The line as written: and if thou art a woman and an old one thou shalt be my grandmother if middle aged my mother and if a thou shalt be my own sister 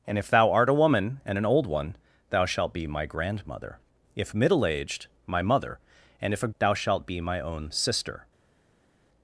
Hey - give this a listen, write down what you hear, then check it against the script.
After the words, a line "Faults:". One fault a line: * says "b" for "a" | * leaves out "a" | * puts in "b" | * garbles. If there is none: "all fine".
and if thou art a woman and an old one thou shalt be my grandmother if middle aged my mother and if a thou shalt be my own sister
Faults:
all fine